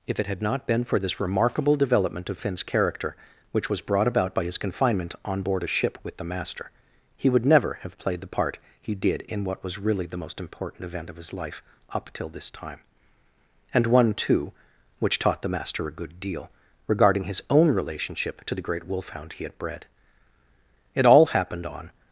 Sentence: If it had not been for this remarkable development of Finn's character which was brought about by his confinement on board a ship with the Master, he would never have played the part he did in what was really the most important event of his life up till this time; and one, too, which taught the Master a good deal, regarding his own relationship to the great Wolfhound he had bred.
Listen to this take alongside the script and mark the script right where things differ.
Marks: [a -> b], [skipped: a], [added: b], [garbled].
If it had not been for this remarkable development of Finn's character which was brought about by his confinement on board a ship with the Master, he would never have played the part he did in what was really the most important event of his life up till this time; and one, too, which taught the Master a good deal, regarding his own relationship to the great Wolfhound he had bred. [added: It all happened on]